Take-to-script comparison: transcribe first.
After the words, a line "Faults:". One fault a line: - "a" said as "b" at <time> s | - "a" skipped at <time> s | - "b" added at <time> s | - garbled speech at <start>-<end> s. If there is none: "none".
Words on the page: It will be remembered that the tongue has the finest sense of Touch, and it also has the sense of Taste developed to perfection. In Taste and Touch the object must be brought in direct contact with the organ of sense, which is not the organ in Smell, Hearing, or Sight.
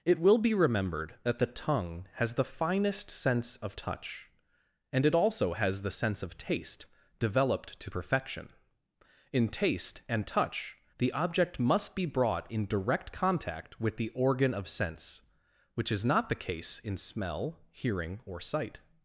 It will be remembered that the tongue has the finest sense of Touch, and it also has the sense of Taste developed to perfection. In Taste and Touch the object must be brought in direct contact with the organ of sense, which is not the case in Smell, Hearing, or Sight.
Faults:
- "organ" said as "case" at 16.4 s